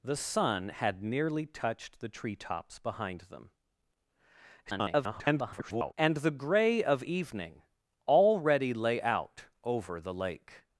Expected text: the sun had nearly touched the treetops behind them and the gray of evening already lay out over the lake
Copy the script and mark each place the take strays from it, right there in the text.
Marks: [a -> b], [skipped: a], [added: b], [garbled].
the sun had nearly touched the treetops behind them [garbled] and the gray of evening already lay out over the lake